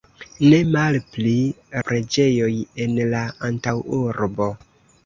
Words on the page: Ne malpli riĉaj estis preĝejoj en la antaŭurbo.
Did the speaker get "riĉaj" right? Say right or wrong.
wrong